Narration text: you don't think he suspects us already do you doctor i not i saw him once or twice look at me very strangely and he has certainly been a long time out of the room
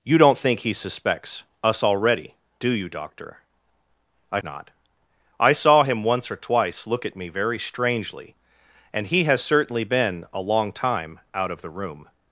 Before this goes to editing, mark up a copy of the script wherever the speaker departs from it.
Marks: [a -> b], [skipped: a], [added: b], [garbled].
you don't think he suspects us already do you doctor i not i saw him once or twice look at me very strangely and he has certainly been a long time out of the room